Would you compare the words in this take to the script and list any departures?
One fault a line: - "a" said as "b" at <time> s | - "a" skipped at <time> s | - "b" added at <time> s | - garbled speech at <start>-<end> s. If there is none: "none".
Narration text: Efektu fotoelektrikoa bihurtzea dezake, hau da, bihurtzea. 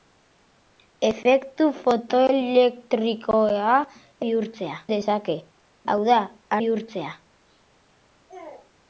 none